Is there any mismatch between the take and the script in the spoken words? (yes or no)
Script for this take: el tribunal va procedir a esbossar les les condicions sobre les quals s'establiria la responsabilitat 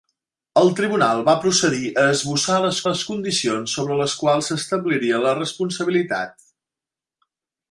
no